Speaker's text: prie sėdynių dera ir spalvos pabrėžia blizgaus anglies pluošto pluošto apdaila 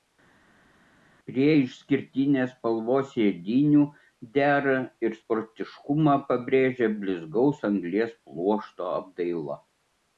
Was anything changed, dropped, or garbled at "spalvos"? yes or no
yes